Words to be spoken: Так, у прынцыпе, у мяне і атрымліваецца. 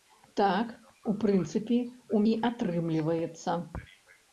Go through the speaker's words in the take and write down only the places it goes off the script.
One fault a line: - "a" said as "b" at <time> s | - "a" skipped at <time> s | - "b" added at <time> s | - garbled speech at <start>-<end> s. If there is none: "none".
- "мяне" skipped at 2.2 s